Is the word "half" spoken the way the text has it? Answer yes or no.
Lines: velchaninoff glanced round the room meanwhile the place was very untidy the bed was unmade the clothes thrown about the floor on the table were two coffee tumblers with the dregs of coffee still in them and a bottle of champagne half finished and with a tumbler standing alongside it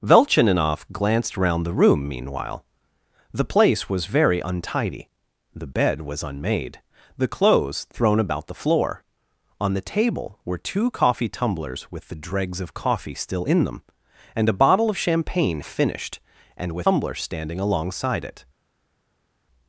no